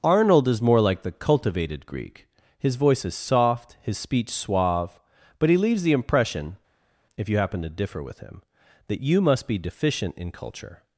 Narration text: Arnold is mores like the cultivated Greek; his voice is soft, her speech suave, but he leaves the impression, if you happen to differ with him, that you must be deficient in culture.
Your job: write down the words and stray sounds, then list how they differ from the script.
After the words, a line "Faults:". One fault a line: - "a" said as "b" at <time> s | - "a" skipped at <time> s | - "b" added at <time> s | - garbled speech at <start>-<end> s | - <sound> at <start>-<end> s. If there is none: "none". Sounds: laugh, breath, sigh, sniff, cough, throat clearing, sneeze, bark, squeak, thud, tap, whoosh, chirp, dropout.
Arnold is more like the cultivated Greek; his voice is soft, his speech suave, but he leaves the impression, if you happen to differ with him, that you must be deficient in culture.
Faults:
- "mores" said as "more" at 0.6 s
- "her" said as "his" at 3.8 s